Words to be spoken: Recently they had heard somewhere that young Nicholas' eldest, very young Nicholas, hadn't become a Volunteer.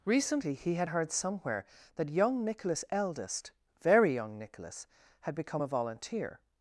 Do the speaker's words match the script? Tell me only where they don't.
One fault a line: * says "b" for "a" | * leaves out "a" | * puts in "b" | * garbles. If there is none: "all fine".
* says "he" for "they"
* says "had" for "hadn't"